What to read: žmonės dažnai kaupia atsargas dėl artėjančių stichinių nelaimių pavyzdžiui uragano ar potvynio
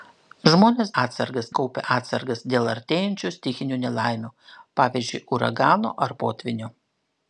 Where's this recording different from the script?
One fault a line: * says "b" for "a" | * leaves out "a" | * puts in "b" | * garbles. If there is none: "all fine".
* says "atsargas" for "dažnai"